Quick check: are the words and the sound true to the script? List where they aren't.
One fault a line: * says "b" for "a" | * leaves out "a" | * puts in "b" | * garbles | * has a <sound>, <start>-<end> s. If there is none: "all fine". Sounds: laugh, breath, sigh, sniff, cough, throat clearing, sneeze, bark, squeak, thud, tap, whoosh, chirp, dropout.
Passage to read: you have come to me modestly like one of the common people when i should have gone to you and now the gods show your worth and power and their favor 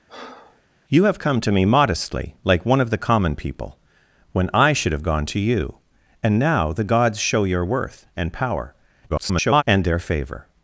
* has a breath, 0.1-0.6 s
* garbles